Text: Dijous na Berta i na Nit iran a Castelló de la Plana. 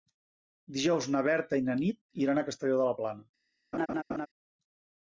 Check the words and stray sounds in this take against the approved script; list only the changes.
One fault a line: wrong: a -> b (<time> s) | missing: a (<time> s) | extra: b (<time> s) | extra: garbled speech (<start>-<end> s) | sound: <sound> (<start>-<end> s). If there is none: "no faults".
sound: laugh (3.7-4.3 s)